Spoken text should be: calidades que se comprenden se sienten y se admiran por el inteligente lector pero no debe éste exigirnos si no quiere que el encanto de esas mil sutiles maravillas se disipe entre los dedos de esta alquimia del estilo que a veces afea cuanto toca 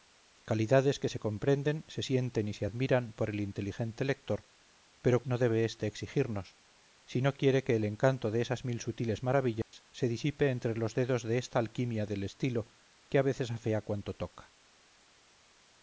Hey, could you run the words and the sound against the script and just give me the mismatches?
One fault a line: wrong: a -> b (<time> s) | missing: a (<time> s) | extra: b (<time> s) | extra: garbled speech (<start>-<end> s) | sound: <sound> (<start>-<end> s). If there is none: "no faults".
sound: dropout (9.6-9.7 s)